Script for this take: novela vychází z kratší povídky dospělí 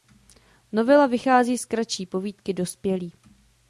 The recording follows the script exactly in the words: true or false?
true